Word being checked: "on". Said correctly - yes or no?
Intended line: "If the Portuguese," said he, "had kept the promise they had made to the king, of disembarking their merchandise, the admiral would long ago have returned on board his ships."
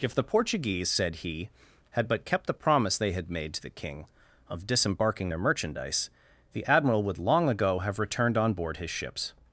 yes